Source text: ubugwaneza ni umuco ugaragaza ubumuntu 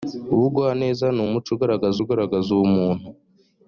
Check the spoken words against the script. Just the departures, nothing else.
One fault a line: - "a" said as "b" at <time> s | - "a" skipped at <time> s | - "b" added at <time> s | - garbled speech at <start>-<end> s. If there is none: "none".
- "ugaragaza" added at 2.0 s